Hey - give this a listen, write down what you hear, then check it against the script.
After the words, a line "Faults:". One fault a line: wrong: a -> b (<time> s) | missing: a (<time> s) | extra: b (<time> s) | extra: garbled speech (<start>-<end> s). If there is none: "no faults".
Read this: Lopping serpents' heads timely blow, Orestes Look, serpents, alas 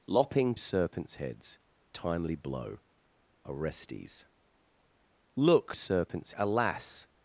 Lopping serpents' heads timely blow, Orestes Look, serpents, alas
Faults:
no faults